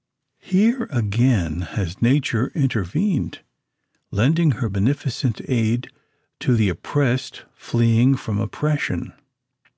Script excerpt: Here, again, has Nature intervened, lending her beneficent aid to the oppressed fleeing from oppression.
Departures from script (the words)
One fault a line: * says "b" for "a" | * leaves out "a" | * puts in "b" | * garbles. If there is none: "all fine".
all fine